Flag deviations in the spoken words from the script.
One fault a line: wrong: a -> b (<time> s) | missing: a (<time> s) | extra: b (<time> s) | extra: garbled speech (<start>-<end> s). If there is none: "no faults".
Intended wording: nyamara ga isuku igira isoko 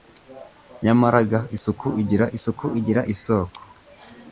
extra: isuku igira (2.4 s)